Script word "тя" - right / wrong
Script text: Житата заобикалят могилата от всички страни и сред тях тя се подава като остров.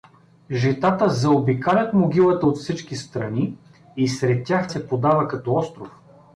wrong